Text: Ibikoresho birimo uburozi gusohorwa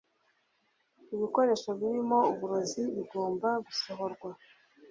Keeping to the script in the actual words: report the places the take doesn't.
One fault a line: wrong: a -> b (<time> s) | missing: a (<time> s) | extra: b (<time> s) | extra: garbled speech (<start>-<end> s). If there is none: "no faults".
extra: bigomba (2.9 s)